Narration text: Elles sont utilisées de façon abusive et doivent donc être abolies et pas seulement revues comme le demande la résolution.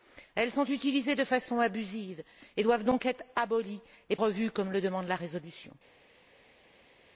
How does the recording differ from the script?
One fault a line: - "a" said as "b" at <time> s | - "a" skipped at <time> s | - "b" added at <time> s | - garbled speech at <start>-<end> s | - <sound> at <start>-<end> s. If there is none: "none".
- "pas seulement" skipped at 4.2 s